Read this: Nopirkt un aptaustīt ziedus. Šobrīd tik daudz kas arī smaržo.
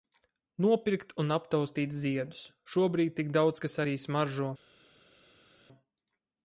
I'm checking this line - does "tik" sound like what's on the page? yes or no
yes